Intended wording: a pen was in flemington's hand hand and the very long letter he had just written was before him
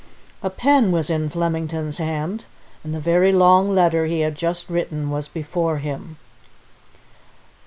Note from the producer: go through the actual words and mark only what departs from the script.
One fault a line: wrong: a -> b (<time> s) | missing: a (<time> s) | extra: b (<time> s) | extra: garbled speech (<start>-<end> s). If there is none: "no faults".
missing: hand (2.4 s)